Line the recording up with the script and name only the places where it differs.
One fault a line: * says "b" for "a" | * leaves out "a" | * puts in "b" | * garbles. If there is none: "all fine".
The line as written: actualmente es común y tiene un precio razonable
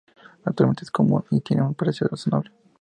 all fine